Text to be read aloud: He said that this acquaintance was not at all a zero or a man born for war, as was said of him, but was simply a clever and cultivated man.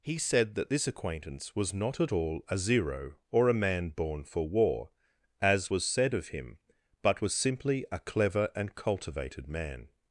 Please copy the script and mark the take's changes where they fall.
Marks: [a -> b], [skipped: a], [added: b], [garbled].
He said that this acquaintance was not at all a zero or a man born for war, as was said of him, but was simply a clever and cultivated man.